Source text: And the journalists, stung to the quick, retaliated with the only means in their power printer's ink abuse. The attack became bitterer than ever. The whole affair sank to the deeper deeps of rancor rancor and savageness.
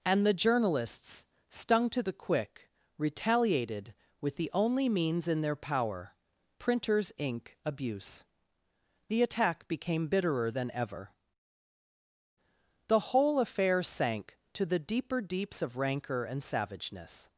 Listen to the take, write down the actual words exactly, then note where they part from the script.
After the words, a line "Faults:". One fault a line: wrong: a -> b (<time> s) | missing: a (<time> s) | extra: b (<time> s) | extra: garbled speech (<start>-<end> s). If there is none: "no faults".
And the journalists, stung to the quick, retaliated with the only means in their power printer's ink abuse. The attack became bitterer than ever. The whole affair sank to the deeper deeps of rancor and savageness.
Faults:
missing: rancor (16.2 s)